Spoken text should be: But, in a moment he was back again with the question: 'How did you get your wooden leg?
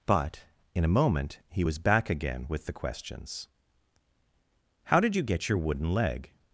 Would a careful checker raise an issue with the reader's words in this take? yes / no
yes